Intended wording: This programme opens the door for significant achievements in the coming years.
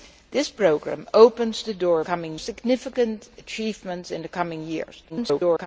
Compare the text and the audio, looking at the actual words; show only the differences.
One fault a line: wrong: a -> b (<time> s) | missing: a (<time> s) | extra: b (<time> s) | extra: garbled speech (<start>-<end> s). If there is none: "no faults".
wrong: for -> coming (2.0 s)
extra: garbled speech (5.1-5.7 s)